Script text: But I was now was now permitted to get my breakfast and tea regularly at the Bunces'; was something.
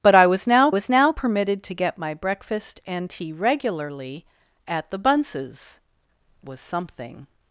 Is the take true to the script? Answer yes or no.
yes